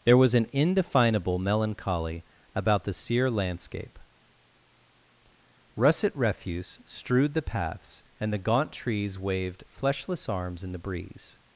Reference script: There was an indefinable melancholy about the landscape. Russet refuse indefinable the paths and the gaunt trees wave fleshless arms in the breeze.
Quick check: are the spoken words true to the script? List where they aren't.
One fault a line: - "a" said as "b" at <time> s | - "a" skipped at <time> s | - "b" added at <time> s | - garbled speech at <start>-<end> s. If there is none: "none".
- "sere" added at 2.9 s
- "indefinable" said as "strewed" at 6.8 s
- "wave" said as "waved" at 9.2 s